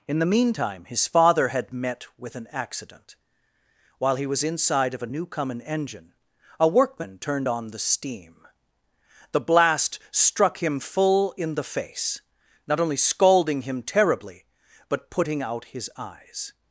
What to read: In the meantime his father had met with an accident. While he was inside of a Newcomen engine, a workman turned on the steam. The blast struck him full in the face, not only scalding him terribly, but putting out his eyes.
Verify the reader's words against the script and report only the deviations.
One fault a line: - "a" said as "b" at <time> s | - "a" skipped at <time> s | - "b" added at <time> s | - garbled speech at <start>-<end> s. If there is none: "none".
none